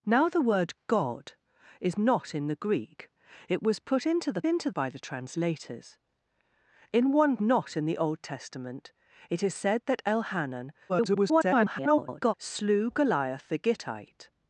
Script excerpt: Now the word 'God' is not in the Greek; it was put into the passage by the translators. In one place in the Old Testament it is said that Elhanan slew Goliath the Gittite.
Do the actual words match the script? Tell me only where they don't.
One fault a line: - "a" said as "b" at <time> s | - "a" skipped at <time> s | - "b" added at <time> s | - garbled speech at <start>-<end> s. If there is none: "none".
- "passage" said as "into" at 4.5 s
- "place" said as "not" at 7.4 s
- garbled speech at 10.9-12.3 s